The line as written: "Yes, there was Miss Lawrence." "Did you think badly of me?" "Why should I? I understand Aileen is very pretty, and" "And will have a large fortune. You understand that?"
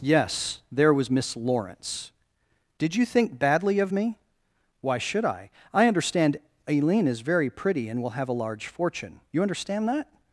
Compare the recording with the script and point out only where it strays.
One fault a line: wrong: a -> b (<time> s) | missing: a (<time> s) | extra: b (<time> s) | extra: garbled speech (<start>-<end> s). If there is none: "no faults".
missing: And (8.0 s)